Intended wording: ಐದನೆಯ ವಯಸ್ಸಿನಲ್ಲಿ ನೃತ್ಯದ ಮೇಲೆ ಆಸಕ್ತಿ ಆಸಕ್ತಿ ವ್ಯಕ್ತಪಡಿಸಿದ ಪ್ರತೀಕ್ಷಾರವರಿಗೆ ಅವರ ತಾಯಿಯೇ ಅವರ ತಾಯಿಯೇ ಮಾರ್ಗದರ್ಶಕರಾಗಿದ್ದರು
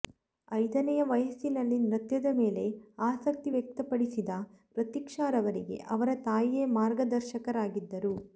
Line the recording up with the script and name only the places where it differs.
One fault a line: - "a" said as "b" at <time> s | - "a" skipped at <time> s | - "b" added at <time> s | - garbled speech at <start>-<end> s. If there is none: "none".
- "ಆಸಕ್ತಿ" skipped at 3.5 s
- "ಅವರ ತಾಯಿಯೇ" skipped at 6.6 s